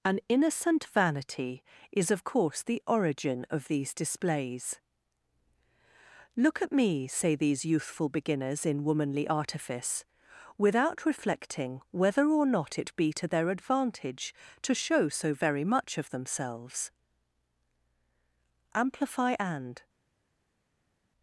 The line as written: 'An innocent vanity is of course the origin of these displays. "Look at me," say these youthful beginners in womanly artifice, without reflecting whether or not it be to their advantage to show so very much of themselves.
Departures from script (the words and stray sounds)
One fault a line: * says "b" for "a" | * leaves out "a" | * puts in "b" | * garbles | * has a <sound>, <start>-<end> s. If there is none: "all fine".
* puts in "Amplify and"